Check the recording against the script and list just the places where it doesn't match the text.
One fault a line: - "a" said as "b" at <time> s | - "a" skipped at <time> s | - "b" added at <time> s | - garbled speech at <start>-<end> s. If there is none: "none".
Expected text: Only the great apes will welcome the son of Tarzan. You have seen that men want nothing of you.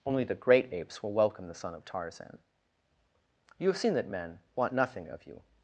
none